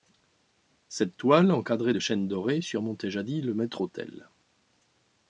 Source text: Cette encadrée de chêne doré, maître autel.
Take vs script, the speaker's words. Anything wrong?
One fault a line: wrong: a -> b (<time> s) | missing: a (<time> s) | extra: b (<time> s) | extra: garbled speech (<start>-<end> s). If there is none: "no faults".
extra: toile (1.2 s)
extra: surmontait jadis le (2.6 s)